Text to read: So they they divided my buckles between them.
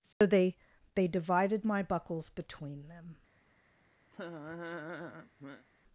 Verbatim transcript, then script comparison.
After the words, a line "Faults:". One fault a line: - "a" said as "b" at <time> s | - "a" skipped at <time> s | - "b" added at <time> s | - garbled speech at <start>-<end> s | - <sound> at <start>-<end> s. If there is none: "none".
So they they divided my buckles between them.
Faults:
- dropout at 0.1-0.2 s
- laugh at 4.1-5.7 s